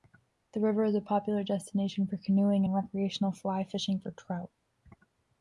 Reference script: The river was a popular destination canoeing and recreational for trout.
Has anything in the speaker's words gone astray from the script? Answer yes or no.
yes